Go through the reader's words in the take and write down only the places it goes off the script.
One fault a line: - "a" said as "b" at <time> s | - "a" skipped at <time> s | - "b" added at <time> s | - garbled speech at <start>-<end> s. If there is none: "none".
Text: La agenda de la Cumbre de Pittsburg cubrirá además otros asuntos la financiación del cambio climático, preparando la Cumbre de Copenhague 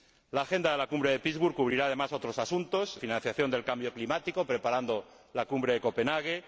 - "la" skipped at 3.0 s